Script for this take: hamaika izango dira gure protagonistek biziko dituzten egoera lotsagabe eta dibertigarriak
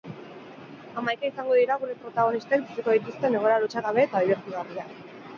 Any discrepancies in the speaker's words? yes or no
no